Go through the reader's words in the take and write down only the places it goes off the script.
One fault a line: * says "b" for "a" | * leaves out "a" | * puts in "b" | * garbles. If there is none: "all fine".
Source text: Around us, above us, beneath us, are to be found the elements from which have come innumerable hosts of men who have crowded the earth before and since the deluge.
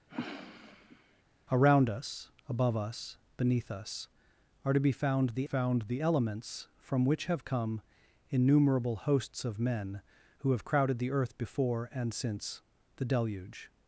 * puts in "found the"